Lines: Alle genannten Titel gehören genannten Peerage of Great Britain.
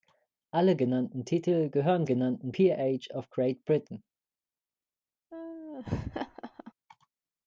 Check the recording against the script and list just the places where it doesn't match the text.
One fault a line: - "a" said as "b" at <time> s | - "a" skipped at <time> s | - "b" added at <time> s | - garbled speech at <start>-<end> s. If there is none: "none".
none